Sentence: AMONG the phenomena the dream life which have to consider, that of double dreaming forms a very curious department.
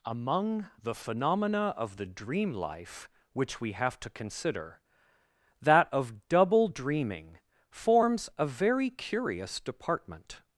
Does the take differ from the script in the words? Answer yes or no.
yes